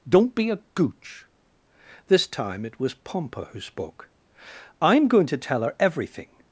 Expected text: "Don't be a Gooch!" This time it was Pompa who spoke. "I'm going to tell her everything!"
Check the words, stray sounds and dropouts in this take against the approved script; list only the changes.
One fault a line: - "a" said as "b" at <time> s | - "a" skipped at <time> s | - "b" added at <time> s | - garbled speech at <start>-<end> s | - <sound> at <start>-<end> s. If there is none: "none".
none